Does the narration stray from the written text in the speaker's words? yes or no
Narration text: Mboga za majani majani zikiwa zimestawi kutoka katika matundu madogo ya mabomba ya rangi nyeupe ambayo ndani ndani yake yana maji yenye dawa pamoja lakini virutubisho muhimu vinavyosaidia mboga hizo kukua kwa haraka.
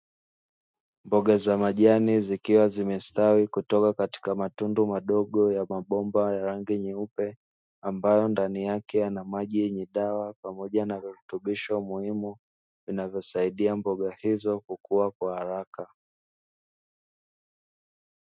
yes